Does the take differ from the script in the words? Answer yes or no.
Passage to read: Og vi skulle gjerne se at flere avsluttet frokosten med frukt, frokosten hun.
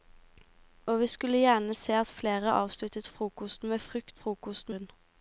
no